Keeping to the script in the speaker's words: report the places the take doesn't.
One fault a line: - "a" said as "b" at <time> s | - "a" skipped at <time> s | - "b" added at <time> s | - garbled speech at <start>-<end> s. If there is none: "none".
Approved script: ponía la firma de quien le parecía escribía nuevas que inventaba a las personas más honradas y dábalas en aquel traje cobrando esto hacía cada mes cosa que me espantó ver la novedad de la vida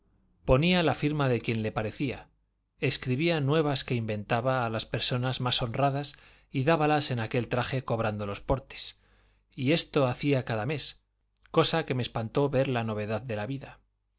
- "los portes y" added at 8.2 s